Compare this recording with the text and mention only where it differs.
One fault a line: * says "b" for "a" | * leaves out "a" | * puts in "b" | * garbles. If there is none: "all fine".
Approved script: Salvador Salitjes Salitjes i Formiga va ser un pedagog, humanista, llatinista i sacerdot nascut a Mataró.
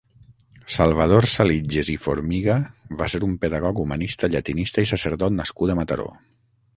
* leaves out "Salitjes"